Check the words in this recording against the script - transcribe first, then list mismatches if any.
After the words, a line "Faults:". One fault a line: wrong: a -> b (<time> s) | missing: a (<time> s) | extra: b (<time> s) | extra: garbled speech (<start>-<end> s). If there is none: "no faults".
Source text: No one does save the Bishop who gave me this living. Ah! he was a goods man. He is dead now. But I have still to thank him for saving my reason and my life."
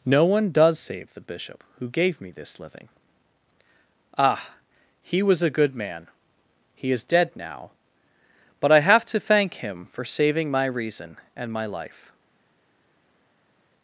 No one does save the Bishop who gave me this living. Ah! he was a good man. He is dead now. But I have to thank him for saving my reason and my life."
Faults:
wrong: goods -> good (5.5 s)
missing: still (9.1 s)